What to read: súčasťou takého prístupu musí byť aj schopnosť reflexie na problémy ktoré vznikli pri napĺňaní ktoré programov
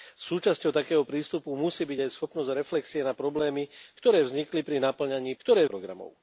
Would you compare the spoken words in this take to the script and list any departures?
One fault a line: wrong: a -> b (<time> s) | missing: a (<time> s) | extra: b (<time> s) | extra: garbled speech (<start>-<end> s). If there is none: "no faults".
no faults